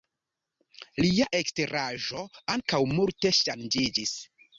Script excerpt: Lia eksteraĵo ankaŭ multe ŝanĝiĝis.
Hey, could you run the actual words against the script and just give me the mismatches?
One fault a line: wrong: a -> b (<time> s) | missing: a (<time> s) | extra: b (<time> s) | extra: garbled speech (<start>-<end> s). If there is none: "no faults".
no faults